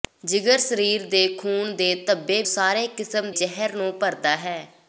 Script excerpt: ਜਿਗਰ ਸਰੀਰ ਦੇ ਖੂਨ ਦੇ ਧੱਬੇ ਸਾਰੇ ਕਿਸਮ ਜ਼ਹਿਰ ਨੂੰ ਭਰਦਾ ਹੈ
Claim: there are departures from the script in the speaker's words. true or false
false